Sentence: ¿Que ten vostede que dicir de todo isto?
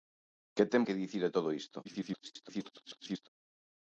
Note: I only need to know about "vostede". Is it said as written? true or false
false